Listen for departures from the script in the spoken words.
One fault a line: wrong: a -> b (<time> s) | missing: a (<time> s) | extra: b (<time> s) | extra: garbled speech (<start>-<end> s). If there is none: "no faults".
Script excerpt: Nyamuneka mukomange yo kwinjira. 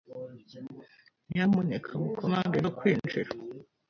no faults